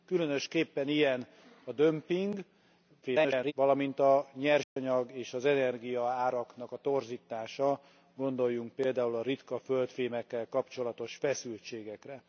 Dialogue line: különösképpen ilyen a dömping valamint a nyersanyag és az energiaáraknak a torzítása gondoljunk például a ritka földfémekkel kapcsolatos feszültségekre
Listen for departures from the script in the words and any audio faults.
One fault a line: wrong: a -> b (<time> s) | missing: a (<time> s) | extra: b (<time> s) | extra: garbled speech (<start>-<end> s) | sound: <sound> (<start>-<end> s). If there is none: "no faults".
extra: garbled speech (3.0-3.5 s)
sound: dropout (4.6-4.8 s)